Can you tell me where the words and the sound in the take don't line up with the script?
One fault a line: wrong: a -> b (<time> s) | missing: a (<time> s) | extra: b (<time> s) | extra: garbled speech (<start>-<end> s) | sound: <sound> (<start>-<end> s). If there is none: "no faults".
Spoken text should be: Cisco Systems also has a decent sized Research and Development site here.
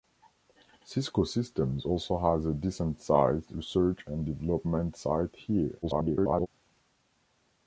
extra: garbled speech (5.8-6.5 s)